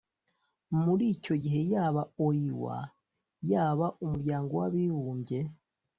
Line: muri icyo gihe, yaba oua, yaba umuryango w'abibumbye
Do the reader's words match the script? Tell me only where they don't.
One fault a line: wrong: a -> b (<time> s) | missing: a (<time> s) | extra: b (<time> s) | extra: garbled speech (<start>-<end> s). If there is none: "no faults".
no faults